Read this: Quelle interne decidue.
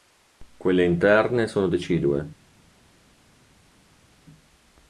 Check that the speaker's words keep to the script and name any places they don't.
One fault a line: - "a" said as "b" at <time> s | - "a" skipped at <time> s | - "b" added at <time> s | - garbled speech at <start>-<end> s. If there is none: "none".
- "sono" added at 1.4 s